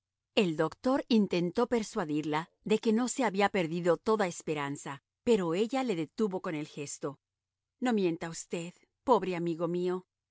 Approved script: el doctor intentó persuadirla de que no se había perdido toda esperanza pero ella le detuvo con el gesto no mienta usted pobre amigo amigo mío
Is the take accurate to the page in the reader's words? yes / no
no